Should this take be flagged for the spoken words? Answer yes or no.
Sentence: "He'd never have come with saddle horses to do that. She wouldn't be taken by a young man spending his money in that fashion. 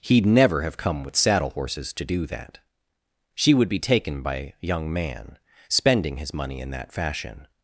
yes